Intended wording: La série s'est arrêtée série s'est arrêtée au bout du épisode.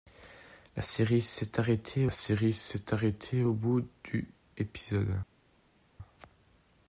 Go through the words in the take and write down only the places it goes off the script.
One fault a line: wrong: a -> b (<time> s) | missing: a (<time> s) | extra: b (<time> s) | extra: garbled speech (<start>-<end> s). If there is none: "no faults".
no faults